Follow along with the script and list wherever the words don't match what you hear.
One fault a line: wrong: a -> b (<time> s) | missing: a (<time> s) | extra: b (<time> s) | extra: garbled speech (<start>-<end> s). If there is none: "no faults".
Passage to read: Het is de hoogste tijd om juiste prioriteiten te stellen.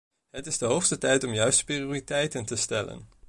no faults